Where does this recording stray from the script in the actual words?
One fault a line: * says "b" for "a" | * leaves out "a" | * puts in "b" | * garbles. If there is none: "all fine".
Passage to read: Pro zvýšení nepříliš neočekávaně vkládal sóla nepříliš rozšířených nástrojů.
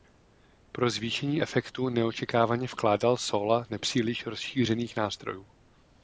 * says "efektu" for "nepříliš"